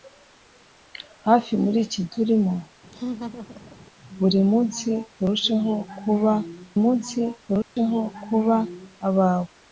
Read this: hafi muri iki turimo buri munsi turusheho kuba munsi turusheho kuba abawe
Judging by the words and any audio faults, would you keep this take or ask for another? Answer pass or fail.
fail